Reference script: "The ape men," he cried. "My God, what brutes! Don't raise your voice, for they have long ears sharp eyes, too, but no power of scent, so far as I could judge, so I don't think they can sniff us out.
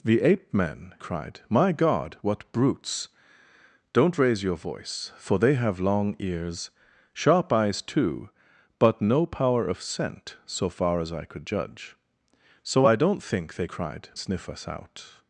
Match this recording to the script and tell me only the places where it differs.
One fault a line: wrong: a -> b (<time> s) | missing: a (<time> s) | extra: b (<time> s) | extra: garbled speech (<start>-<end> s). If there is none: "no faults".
missing: he (0.9 s)
wrong: can -> cried (13.6 s)